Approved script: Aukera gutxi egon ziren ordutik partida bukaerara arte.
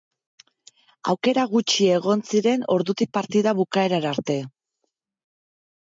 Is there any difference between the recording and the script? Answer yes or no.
no